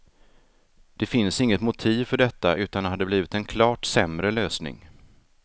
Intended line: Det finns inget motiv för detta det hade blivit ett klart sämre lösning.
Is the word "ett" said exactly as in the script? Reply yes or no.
no